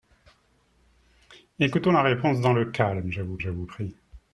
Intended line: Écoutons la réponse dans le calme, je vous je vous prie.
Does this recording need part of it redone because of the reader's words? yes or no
no